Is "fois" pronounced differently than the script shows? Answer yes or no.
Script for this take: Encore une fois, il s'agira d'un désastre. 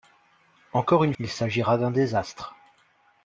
yes